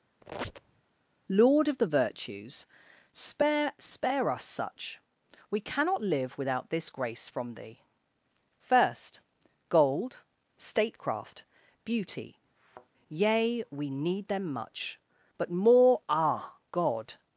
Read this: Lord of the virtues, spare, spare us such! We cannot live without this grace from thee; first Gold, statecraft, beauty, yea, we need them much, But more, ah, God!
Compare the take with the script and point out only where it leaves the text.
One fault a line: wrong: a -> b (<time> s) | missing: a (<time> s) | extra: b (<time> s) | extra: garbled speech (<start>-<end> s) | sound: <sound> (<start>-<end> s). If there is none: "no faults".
sound: squeak (0.2-0.8 s)
sound: thud (12.6-12.9 s)